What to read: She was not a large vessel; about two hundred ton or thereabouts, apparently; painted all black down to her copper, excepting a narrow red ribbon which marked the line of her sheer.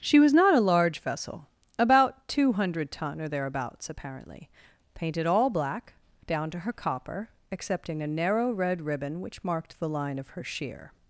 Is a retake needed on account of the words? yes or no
no